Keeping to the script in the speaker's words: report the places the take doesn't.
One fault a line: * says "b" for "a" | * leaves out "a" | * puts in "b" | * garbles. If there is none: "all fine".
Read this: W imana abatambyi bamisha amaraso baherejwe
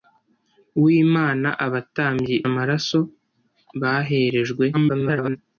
* leaves out "bamisha"
* garbles